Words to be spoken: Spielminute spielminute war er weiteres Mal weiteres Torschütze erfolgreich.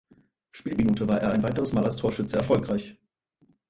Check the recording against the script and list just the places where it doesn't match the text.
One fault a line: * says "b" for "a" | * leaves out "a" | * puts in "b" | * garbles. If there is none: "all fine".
* leaves out "spielminute"
* puts in "ein"
* says "als" for "weiteres"